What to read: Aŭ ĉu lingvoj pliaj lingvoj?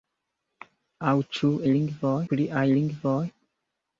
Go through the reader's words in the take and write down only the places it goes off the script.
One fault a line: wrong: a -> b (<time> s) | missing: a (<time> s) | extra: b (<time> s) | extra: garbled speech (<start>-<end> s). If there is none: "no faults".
no faults